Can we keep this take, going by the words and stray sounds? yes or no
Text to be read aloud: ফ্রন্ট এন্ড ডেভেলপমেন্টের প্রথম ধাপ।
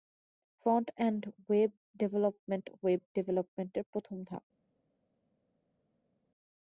no